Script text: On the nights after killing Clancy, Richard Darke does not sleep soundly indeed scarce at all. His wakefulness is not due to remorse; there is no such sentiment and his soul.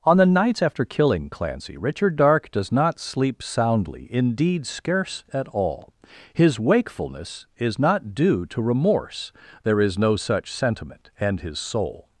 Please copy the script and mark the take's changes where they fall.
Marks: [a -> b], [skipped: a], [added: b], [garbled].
On the nights after killing Clancy, Richard Darke does not sleep soundly indeed scarce at all. His wakefulness is not due to remorse; there is no such sentiment and his soul.